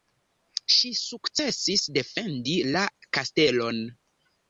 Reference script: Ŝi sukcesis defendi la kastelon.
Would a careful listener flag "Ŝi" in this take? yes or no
no